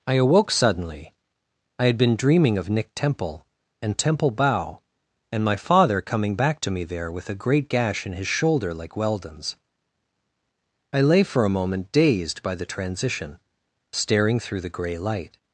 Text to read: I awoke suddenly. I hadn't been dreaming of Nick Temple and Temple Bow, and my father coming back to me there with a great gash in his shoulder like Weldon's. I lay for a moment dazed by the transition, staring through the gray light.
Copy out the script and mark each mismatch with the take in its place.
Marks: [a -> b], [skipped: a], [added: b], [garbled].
I awoke suddenly. I [hadn't -> had] been dreaming of Nick Temple and Temple Bow, and my father coming back to me there with a great gash in his shoulder like Weldon's. I lay for a moment dazed by the transition, staring through the gray light.